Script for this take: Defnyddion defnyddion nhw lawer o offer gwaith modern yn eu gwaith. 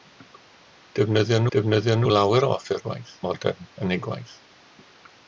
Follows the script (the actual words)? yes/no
yes